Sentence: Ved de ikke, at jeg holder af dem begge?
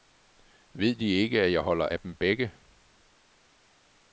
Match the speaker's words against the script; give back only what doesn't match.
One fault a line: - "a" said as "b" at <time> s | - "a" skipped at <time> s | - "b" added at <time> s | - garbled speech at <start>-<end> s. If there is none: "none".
none